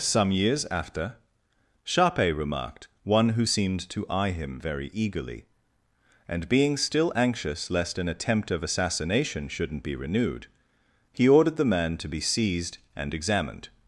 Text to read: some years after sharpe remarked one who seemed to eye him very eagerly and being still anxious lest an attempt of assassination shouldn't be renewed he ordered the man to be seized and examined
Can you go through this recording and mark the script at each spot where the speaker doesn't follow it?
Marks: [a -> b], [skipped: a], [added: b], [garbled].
some years after sharpe remarked one who seemed to eye him very eagerly and being still anxious lest an attempt of assassination shouldn't be renewed he ordered the man to be seized and examined